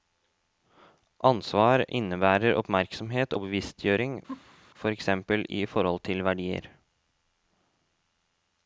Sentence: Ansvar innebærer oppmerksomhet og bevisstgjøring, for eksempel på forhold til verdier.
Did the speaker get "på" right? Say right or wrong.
wrong